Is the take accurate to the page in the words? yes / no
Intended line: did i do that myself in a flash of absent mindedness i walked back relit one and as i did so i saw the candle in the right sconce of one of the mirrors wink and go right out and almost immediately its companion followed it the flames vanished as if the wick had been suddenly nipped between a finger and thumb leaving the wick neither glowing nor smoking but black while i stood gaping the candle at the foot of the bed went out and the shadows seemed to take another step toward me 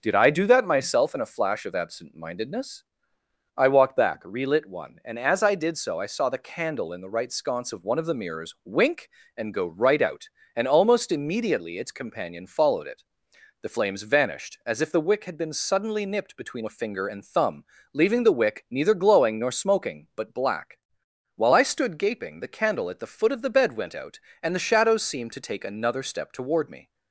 yes